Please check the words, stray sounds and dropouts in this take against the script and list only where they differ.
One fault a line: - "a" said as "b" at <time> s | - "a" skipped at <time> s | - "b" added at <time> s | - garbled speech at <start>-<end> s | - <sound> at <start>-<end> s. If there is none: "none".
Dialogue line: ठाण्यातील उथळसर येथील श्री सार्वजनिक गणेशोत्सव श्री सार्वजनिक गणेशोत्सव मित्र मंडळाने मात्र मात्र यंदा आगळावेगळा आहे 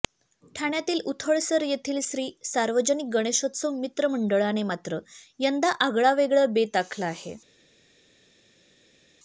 - "श्री सार्वजनिक गणेशोत्सव" skipped at 3.8 s
- "मात्र" skipped at 5.0 s
- "बेत आखला" added at 6.5 s